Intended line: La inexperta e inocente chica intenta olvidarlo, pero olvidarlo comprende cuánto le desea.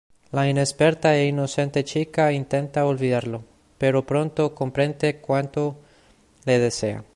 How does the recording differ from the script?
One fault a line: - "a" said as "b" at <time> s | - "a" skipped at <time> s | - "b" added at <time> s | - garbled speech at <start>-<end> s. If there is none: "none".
- "olvidarlo" said as "pronto" at 4.0 s